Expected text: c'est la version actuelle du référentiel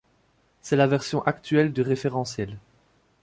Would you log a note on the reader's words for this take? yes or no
no